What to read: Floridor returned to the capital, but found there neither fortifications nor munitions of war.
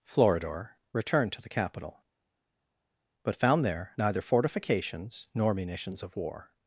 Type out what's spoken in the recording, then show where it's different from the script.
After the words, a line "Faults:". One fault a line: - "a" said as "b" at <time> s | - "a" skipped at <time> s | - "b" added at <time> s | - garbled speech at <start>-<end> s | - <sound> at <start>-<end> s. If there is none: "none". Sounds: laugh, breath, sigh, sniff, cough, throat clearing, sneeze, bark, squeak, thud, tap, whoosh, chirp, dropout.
Floridor returned to the capital, but found there neither fortifications nor munitions of war.
Faults:
none